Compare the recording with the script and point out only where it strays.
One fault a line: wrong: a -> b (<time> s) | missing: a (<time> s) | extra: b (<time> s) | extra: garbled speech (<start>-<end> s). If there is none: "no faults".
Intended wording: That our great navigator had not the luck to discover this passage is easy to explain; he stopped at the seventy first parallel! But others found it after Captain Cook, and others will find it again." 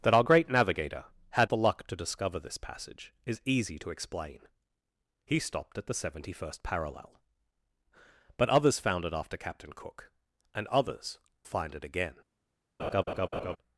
missing: not (1.5 s)
missing: will (11.2 s)